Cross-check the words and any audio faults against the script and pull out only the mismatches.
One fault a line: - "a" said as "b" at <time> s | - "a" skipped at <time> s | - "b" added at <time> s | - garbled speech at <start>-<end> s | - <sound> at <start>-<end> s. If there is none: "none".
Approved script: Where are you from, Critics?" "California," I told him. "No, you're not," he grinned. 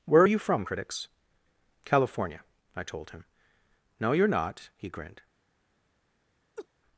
- laugh at 6.6-6.7 s